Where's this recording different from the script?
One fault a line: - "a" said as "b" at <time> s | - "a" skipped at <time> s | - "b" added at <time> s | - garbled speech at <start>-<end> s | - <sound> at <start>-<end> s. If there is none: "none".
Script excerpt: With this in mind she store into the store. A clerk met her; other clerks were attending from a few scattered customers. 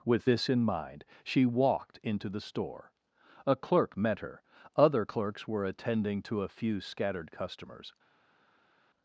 - "store" said as "walked" at 1.5 s
- "from" said as "to" at 6.2 s